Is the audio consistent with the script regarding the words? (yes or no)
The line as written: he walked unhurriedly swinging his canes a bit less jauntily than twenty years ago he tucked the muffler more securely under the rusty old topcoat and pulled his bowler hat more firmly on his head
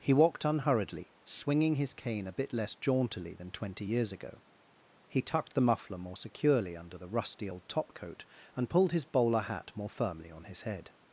no